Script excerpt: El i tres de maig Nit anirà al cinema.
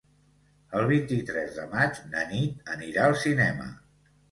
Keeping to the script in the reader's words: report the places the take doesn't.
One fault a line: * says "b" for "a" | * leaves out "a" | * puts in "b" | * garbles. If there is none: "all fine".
* puts in "vint"
* puts in "na"